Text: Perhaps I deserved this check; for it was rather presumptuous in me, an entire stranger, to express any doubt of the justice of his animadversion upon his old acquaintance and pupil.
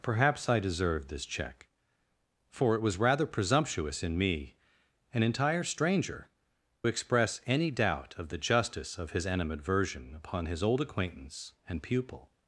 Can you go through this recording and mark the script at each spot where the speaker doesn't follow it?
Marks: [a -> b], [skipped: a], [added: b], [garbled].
Perhaps I deserved this check; for it was rather presumptuous in me, an entire stranger, [skipped: to] express any doubt of the justice of his animadversion upon his old acquaintance and pupil.